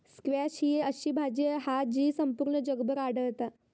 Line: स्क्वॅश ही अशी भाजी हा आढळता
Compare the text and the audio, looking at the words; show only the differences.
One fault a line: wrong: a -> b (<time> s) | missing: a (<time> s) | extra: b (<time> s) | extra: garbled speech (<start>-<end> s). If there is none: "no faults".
extra: जी संपूर्ण जगभर (1.8 s)